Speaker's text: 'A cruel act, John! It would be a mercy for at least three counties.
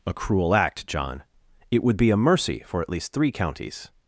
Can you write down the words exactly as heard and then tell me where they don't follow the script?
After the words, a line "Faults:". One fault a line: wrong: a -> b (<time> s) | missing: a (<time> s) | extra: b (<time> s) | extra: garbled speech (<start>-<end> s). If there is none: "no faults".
'A cruel act, John! It would be a mercy for at least three counties.
Faults:
no faults